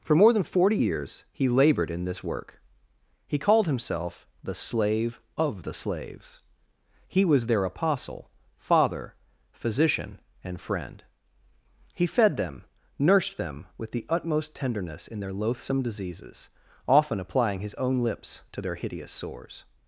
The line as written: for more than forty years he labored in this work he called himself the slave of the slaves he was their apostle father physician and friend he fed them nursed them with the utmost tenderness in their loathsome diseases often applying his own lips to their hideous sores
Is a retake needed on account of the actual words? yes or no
no